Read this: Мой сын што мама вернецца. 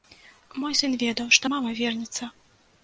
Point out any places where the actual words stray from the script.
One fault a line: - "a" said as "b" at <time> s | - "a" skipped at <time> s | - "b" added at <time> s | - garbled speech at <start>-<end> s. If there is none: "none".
- "ведаў" added at 1.0 s